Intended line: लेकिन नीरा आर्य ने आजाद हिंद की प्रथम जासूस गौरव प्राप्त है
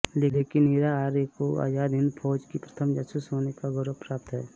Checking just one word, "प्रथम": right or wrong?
right